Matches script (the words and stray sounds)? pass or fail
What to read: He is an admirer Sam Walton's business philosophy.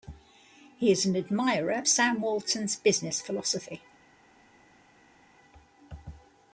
pass